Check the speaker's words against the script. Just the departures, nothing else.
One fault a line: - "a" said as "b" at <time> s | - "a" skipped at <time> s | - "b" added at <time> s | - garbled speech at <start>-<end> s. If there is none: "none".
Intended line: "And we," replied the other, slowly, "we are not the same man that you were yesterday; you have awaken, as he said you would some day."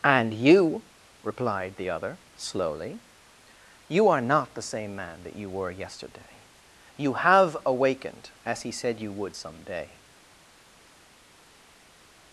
- "we" said as "you" at 0.3 s
- "we" said as "you" at 3.9 s
- "awaken" said as "awakened" at 7.6 s